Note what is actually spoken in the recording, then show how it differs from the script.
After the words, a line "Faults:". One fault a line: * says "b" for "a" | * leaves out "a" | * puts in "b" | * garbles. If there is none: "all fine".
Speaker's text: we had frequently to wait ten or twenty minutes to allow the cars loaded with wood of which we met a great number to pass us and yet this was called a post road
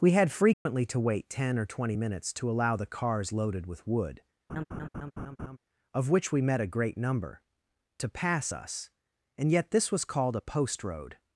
we had frequently to wait ten or twenty minutes to allow the cars loaded with wood of which we met a great number to pass us and yet this was called a post road
Faults:
all fine